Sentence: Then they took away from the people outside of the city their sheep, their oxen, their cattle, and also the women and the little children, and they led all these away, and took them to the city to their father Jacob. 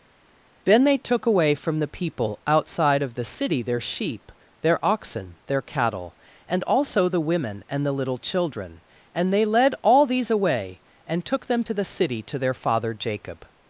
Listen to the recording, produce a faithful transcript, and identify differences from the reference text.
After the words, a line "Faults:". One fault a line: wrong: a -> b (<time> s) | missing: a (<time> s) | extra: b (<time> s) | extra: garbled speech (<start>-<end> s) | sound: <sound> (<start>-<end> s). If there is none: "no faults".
Then they took away from the people outside of the city their sheep, their oxen, their cattle, and also the women and the little children, and they led all these away, and took them to the city to their father Jacob.
Faults:
no faults